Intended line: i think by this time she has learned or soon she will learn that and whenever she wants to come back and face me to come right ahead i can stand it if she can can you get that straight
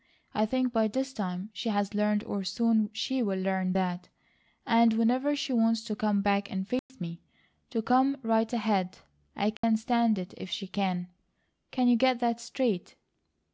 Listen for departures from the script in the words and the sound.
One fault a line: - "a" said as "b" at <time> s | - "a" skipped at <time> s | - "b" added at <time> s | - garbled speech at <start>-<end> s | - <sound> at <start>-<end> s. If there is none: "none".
- dropout at 6.8-6.9 s
- dropout at 9.6-9.6 s